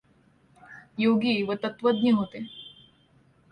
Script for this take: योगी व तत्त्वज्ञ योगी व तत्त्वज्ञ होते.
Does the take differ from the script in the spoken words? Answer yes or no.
yes